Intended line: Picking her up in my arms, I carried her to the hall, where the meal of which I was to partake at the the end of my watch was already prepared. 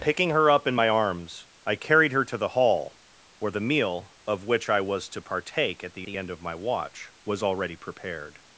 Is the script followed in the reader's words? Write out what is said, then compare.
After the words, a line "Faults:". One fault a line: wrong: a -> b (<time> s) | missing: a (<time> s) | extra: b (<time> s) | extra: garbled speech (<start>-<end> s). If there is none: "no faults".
Picking her up in my arms, I carried her to the hall, where the meal of which I was to partake at the the end of my watch was already prepared.
Faults:
no faults